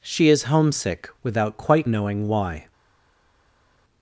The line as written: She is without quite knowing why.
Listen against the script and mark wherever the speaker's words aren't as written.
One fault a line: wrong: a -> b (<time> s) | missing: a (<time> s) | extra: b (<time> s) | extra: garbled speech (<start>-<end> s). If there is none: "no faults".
extra: homesick (0.4 s)